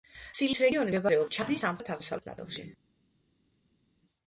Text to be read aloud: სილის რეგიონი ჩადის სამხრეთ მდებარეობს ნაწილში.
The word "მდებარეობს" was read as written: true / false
false